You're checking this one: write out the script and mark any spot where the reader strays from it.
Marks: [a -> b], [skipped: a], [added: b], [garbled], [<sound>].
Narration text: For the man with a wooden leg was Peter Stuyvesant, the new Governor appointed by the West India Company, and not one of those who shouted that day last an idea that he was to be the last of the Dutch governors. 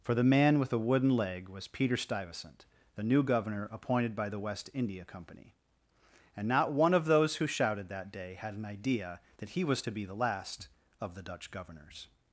For the man with a wooden leg was Peter Stuyvesant, the new Governor appointed by the West India Company, and not one of those who shouted that day [last -> had] an idea that he was to be the last of the Dutch governors.